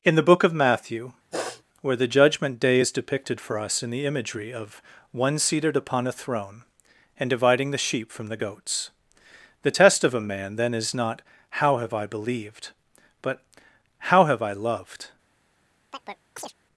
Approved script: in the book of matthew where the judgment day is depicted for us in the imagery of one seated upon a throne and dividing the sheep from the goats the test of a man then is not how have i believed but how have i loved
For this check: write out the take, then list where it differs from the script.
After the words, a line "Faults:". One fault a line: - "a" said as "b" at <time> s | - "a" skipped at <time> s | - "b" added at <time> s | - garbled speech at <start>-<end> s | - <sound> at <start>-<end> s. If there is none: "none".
in the book of matthew where the judgment day is depicted for us in the imagery of one seated upon a throne and dividing the sheep from the goats the test of a man then is not how have i believed but how have i loved
Faults:
- sniff at 1.3-1.6 s
- chirp at 15.9-16.5 s